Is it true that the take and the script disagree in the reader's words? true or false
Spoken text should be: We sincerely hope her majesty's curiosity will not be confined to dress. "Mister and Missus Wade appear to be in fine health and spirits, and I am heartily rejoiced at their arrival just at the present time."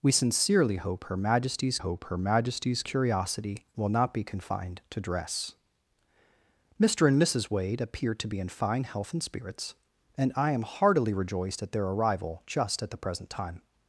true